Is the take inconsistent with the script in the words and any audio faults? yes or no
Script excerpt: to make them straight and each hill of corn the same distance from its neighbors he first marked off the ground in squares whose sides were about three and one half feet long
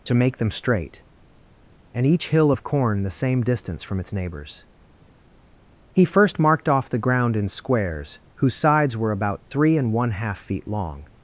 no